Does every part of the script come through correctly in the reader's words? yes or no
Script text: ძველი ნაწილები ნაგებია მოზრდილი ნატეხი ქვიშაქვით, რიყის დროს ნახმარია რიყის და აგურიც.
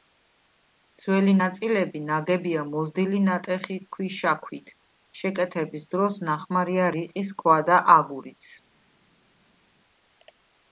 no